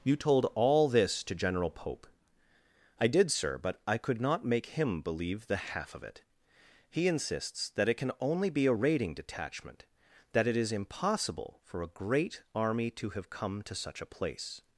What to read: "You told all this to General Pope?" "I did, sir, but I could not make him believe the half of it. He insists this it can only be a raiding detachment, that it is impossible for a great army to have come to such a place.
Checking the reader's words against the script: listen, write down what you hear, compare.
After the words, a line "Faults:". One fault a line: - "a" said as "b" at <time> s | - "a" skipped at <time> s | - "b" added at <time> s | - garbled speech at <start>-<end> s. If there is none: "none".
"You told all this to General Pope?" "I did, sir, but I could not make him believe the half of it. He insists that it can only be a raiding detachment, that it is impossible for a great army to have come to such a place.
Faults:
- "this" said as "that" at 7.7 s